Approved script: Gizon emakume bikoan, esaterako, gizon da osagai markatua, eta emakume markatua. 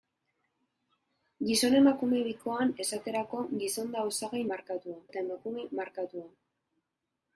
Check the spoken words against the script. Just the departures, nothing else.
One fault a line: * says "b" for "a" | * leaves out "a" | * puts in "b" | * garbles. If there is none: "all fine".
all fine